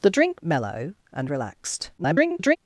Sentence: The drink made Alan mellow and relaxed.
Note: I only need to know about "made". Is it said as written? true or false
false